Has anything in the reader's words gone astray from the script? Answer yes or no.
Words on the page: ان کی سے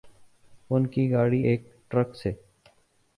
yes